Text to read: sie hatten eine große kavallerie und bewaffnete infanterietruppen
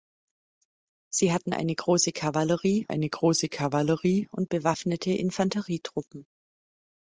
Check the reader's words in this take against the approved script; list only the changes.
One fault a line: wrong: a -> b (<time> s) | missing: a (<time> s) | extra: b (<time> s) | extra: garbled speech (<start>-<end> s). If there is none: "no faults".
extra: eine große kavallerie (2.9 s)